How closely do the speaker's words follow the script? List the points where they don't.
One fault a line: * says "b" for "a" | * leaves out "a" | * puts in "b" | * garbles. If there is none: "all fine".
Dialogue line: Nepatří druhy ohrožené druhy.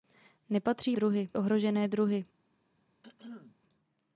all fine